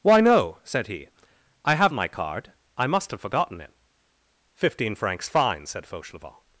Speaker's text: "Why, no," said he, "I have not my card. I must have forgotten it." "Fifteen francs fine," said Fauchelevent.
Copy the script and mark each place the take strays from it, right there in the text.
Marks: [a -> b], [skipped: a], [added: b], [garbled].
"Why, no," said he, "I have [skipped: not] my card. I must have forgotten it." "Fifteen francs fine," said Fauchelevent.